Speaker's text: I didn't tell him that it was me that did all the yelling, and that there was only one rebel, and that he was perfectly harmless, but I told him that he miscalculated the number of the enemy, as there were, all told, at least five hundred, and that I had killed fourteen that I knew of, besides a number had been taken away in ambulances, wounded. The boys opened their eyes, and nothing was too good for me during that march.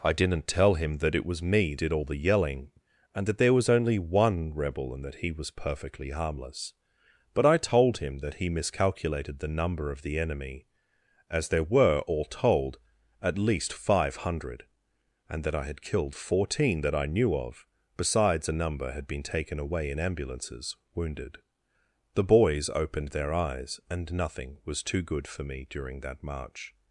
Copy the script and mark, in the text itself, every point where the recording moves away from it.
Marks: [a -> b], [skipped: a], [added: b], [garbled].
I didn't tell him that it was me [skipped: that] did all the yelling, and that there was only one rebel, and that he was perfectly harmless, but I told him that he miscalculated the number of the enemy, as there were, all told, at least five hundred, and that I had killed fourteen that I knew of, besides a number had been taken away in ambulances, wounded. The boys opened their eyes, and nothing was too good for me during that march.